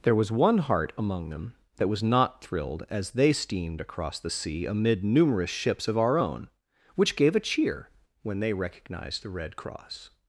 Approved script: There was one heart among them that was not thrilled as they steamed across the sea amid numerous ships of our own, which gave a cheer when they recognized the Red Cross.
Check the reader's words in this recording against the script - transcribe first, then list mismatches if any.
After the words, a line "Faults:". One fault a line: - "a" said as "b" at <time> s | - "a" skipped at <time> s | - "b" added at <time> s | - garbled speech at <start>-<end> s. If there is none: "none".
There was one heart among them that was not thrilled as they steamed across the sea amid numerous ships of our own, which gave a cheer when they recognized the Red Cross.
Faults:
none